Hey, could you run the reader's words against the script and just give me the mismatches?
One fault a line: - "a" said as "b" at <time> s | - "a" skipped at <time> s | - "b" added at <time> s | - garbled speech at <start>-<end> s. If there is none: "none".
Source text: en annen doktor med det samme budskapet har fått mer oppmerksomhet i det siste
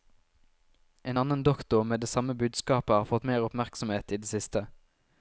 none